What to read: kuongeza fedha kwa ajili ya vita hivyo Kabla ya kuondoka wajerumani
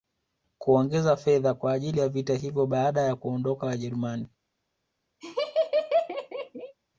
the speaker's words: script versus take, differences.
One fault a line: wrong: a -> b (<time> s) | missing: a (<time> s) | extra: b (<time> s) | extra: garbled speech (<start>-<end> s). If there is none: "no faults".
wrong: Kabla -> Baada (2.7 s)